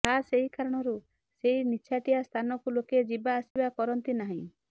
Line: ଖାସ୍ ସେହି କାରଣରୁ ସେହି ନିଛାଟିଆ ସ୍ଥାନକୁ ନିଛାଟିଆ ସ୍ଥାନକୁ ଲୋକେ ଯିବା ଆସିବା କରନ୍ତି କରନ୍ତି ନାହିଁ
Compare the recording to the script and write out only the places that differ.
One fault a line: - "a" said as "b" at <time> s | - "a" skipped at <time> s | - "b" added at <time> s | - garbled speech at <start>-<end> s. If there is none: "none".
- "ସେହି" said as "ଏହି" at 0.3 s
- "ନିଛାଟିଆ ସ୍ଥାନକୁ" skipped at 2.8 s
- "କରନ୍ତି" skipped at 4.2 s